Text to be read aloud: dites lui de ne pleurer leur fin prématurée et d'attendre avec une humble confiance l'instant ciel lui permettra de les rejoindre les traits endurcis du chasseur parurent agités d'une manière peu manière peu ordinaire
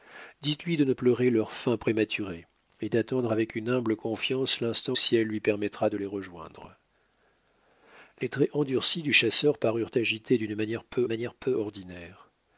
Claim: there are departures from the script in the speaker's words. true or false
false